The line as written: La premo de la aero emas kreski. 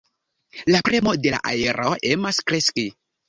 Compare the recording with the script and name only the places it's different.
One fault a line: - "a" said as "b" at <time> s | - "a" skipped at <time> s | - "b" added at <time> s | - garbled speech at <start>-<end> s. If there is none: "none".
none